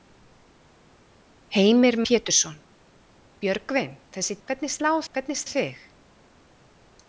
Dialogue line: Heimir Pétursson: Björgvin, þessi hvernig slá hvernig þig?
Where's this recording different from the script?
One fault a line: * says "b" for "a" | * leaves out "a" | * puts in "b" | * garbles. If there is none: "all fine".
all fine